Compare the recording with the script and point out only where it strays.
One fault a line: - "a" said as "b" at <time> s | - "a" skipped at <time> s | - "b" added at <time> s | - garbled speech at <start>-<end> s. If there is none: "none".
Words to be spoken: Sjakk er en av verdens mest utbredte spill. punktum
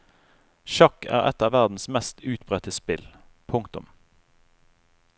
- "en" said as "et" at 1.3 s